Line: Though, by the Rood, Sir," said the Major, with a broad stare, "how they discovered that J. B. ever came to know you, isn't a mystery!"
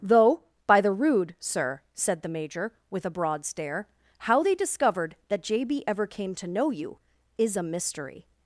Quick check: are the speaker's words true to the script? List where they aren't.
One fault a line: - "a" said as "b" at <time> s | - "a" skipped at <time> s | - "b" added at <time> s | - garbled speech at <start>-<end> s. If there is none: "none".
- "isn't" said as "is" at 7.4 s